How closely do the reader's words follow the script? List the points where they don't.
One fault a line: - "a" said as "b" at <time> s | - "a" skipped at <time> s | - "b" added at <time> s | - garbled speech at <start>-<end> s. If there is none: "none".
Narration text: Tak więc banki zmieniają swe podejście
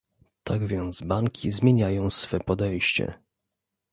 none